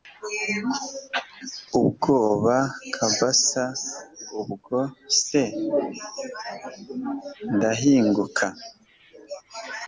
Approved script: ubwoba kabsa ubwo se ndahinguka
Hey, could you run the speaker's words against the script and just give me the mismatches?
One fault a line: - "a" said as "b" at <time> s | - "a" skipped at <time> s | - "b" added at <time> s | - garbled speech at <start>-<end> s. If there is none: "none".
none